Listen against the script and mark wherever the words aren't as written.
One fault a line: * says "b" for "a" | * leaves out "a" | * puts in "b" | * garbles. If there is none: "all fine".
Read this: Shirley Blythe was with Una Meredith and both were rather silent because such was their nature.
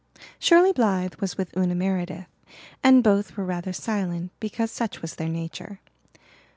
all fine